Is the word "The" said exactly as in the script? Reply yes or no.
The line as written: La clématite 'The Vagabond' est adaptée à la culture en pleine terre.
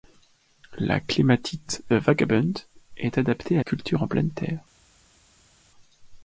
no